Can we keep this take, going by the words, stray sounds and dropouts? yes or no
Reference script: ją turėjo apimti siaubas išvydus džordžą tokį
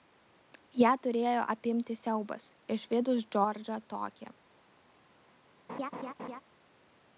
no